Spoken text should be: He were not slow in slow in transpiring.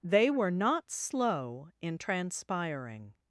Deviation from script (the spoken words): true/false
true